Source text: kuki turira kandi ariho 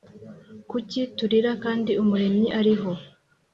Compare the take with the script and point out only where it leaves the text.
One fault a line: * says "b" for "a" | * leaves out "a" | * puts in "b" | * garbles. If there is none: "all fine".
* puts in "umuremyi"